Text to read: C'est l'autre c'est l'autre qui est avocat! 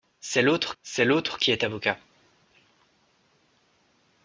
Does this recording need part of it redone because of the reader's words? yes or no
no